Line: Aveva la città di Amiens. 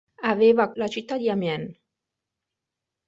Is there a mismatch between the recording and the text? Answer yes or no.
no